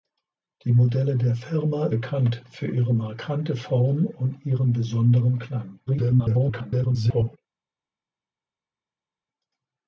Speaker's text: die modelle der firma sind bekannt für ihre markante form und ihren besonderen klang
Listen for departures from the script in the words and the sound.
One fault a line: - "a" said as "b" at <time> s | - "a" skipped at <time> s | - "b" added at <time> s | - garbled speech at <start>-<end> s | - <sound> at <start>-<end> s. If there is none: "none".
- "sind" skipped at 1.9 s
- garbled speech at 5.9-7.4 s